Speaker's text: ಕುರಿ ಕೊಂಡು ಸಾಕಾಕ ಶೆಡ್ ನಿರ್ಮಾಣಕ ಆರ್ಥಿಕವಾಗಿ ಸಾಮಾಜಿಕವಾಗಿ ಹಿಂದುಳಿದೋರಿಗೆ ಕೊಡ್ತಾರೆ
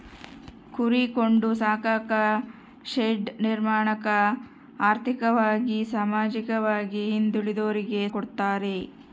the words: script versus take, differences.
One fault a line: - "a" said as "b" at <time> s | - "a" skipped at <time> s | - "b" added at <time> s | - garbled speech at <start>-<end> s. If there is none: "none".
none